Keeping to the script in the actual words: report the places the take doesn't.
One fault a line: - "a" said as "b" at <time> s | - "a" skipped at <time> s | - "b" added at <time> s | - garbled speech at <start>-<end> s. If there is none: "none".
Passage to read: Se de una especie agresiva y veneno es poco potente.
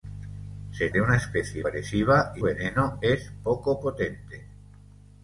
none